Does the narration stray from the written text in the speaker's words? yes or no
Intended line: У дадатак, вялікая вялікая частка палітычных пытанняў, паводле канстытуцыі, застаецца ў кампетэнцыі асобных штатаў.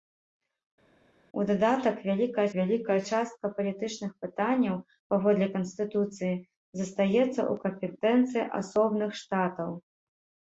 no